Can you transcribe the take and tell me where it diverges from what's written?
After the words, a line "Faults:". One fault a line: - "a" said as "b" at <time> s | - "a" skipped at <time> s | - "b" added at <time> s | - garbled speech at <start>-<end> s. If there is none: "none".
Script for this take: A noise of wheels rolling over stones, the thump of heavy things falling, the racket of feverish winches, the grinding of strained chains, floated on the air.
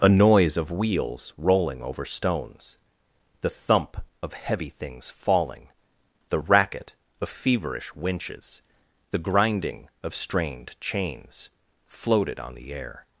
A noise of wheels rolling over stones, the thump of heavy things falling, the racket of feverish winches, the grinding of strained chains, floated on the air.
Faults:
none